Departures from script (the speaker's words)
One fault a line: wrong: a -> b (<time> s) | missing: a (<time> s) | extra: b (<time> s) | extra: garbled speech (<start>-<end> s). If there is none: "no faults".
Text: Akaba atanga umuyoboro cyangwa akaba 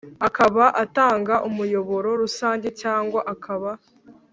extra: rusange (2.2 s)